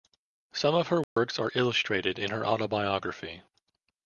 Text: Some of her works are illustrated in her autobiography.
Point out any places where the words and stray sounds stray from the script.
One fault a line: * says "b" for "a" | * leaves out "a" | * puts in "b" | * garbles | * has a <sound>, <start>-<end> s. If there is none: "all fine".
* has a dropout, 1.0-1.2 s